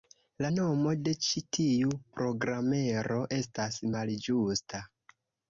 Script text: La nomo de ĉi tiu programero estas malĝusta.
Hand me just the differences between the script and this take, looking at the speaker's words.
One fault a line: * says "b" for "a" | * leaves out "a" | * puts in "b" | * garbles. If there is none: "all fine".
all fine